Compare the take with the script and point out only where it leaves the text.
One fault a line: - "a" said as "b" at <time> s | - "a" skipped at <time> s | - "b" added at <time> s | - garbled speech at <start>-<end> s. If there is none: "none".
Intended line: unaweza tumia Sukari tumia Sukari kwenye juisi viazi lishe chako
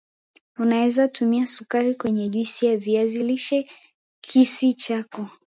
- "tumia Sukari" skipped at 1.9 s
- "ya" added at 2.6 s
- "kisi" added at 4.2 s